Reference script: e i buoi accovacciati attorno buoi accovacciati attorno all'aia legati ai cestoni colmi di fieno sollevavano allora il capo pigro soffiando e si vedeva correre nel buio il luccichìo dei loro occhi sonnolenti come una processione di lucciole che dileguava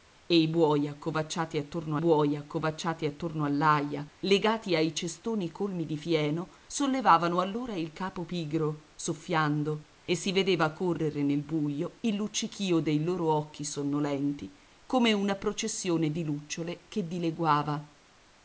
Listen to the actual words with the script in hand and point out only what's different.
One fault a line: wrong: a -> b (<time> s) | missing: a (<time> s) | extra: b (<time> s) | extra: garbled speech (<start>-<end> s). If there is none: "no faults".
no faults